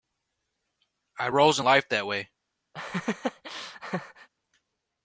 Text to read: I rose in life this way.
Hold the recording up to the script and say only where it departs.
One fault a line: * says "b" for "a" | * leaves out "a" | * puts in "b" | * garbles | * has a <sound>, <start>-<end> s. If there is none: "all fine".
* says "that" for "this"
* has a laugh, 2.7-4.3 s